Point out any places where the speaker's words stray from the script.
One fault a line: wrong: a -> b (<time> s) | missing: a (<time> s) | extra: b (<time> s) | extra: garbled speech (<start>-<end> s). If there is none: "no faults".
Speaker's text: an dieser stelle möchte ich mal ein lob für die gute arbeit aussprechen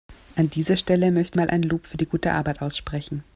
missing: ich (1.4 s)